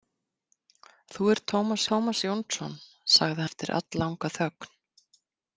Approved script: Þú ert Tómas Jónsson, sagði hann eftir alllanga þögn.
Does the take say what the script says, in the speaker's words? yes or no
no